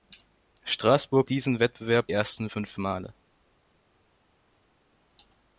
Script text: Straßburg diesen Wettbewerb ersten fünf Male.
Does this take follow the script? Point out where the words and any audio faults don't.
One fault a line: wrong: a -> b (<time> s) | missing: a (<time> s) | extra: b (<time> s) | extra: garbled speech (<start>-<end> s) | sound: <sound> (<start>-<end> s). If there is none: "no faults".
no faults